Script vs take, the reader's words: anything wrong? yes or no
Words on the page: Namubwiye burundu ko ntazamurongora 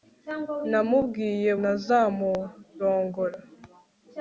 yes